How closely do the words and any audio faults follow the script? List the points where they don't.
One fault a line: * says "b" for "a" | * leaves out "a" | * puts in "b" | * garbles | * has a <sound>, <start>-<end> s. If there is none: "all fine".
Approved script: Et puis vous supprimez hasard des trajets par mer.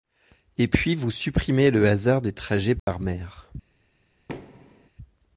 * puts in "le"
* has a dropout, 2.8-2.9 s
* has a thud, 4.3-4.9 s